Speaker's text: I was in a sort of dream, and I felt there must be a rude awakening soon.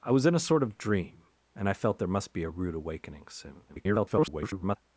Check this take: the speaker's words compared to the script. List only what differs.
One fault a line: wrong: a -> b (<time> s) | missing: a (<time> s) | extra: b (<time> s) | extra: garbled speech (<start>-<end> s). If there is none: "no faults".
extra: garbled speech (3.7-4.8 s)